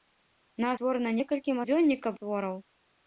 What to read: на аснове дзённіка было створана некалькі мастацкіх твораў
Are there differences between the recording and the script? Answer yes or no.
yes